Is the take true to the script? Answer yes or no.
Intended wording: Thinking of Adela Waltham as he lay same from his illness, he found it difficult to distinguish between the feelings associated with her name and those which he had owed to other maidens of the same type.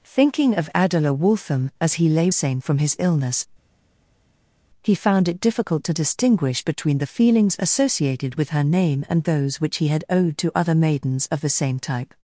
yes